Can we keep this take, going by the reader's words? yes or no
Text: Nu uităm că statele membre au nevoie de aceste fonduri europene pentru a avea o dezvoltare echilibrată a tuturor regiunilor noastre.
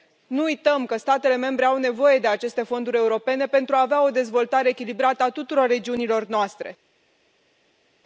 yes